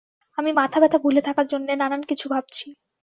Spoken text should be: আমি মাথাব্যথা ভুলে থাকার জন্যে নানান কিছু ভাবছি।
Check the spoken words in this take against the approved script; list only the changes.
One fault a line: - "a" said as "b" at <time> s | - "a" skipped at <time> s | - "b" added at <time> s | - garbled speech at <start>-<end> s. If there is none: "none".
none